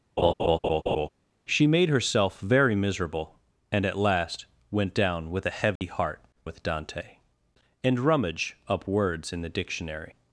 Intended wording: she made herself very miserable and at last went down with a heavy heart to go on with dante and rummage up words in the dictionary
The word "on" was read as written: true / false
false